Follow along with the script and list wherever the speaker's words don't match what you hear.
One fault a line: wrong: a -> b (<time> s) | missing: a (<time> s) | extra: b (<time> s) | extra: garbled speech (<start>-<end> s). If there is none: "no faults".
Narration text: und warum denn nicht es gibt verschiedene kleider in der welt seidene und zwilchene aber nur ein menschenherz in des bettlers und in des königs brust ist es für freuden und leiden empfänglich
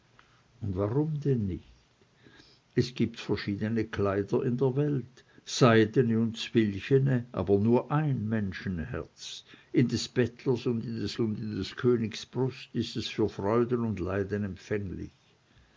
extra: und in des (11.2 s)